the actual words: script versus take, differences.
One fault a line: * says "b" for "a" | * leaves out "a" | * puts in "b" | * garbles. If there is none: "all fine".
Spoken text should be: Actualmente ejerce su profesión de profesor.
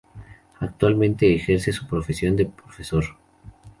all fine